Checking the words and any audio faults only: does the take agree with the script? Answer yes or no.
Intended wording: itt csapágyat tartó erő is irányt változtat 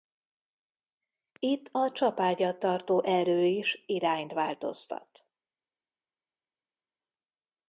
no